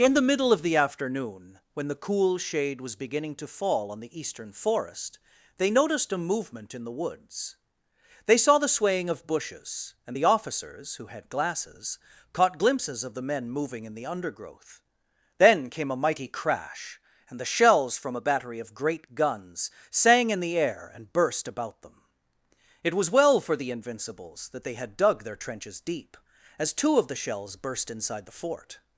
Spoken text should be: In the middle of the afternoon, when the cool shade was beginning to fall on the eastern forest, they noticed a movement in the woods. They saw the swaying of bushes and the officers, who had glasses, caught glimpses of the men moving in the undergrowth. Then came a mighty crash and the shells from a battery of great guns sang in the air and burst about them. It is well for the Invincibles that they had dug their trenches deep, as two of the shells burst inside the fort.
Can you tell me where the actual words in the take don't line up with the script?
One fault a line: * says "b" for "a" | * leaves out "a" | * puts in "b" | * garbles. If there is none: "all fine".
* says "was" for "is"